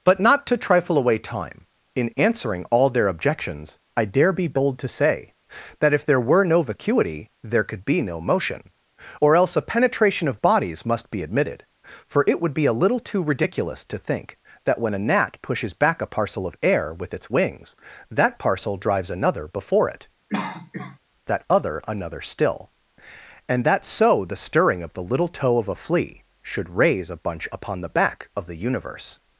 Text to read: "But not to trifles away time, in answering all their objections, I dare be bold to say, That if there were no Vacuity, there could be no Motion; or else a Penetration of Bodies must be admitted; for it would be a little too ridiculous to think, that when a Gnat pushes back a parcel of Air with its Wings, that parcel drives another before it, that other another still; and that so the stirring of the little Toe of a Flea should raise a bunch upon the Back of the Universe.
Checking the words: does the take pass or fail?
fail